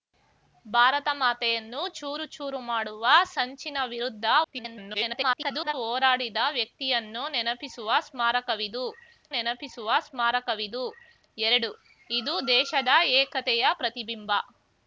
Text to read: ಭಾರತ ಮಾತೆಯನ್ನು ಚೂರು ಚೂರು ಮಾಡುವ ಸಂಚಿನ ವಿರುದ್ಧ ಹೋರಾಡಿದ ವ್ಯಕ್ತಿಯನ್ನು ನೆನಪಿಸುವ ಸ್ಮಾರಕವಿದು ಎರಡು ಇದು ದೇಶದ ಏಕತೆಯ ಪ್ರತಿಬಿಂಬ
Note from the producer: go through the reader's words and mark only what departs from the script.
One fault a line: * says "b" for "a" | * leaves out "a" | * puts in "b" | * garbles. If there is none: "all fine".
* garbles
* puts in "ನೆನಪಿಸುವ ಸ್ಮಾರಕವಿದು"